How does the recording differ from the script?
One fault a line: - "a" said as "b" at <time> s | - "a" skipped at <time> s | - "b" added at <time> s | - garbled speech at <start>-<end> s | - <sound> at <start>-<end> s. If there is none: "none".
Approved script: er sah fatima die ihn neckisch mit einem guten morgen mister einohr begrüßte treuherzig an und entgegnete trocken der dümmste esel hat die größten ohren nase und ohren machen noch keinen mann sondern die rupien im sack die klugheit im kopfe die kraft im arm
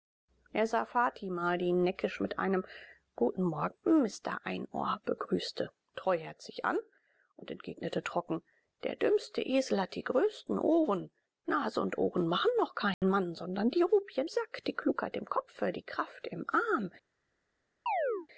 - dropout at 12.9-13.0 s
- "im" skipped at 14.3 s
- chirp at 17.9-18.3 s